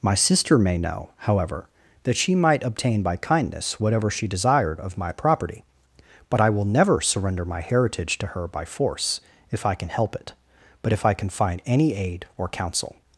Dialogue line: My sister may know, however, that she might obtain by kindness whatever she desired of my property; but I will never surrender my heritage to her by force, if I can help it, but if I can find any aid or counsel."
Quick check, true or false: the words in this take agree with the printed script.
true